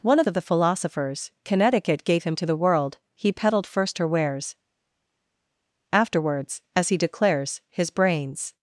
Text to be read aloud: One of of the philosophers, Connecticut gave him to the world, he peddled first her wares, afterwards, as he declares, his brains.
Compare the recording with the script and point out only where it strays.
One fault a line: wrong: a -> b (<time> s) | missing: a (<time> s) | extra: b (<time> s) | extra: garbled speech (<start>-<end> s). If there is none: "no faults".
no faults